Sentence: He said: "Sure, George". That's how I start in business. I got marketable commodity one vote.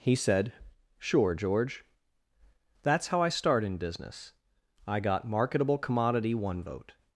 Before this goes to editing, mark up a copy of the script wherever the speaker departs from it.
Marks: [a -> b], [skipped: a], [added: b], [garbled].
He said: "Sure, George". That's how I start in business. I got marketable commodity one vote.